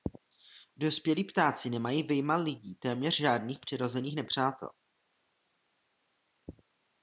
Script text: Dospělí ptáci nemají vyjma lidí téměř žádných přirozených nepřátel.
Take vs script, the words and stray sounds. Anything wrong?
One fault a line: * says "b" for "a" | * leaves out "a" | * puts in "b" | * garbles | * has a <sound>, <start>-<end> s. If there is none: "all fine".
all fine